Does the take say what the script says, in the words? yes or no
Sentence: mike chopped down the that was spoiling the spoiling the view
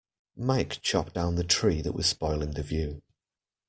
no